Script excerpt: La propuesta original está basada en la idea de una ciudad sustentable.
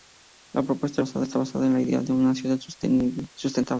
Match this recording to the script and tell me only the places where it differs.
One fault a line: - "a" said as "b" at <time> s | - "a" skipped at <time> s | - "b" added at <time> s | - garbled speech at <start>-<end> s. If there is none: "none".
- "original" said as "basada" at 1.0 s